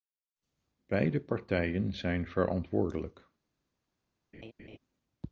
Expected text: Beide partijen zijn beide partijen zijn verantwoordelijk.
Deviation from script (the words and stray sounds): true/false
true